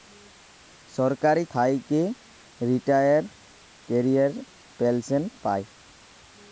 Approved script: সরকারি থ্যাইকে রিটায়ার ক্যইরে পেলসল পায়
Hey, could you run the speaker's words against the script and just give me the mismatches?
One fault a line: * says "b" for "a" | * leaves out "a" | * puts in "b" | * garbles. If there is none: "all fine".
all fine